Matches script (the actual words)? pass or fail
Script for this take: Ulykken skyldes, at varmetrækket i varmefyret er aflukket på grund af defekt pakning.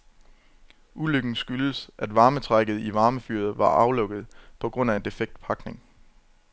fail